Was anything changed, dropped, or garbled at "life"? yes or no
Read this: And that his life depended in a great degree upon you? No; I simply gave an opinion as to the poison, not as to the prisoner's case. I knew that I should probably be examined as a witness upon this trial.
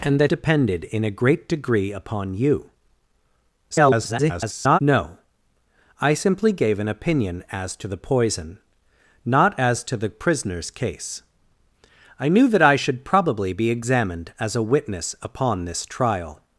yes